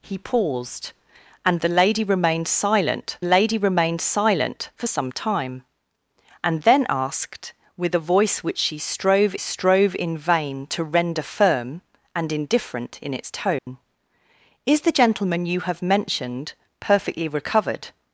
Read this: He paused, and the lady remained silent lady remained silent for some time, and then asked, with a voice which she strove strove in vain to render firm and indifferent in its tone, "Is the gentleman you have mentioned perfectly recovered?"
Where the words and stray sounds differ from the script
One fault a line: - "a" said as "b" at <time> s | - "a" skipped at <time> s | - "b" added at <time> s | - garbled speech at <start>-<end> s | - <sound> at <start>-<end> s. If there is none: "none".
- dropout at 13.6-13.7 s